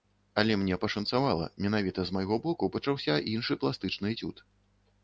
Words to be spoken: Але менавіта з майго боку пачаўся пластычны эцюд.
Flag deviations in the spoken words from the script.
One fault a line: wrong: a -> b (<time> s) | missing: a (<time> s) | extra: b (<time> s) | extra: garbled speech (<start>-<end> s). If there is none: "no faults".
extra: мне пашанцавала (0.6 s)
extra: іншы (3.4 s)